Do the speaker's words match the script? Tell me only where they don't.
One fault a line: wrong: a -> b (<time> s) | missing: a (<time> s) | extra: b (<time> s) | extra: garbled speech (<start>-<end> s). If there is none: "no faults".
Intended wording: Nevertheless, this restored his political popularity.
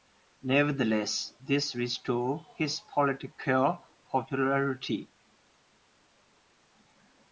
no faults